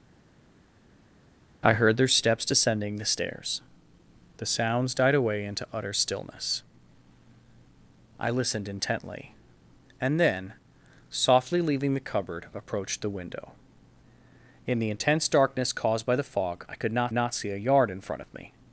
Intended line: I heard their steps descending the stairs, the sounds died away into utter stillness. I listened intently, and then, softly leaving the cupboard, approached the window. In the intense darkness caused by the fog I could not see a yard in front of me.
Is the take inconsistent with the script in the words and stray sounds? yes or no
yes